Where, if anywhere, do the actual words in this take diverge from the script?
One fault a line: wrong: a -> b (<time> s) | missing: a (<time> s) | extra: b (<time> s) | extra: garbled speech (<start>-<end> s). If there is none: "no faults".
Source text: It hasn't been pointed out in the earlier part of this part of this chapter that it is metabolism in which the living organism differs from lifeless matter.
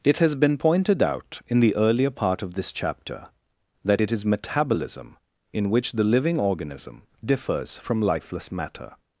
wrong: hasn't -> has (0.2 s)
missing: part of this (2.7 s)